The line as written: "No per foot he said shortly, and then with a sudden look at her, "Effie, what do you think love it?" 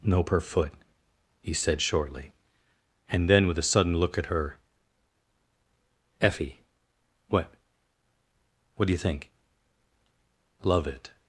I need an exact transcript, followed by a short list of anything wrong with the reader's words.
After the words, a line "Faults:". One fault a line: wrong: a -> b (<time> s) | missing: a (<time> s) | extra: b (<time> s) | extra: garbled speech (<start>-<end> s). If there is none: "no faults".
"No per foot he said shortly, and then with a sudden look at her, "Effie, what what do you think love it?"
Faults:
extra: what (8.8 s)